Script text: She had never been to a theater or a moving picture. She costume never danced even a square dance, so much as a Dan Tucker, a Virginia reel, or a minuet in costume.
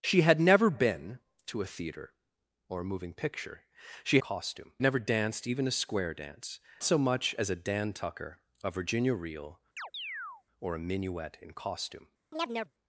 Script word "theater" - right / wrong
right